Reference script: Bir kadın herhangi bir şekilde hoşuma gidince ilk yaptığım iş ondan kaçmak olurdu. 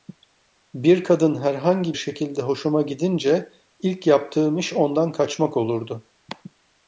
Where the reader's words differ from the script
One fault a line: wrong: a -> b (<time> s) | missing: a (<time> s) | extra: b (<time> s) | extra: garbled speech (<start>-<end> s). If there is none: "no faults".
missing: bir (2.0 s)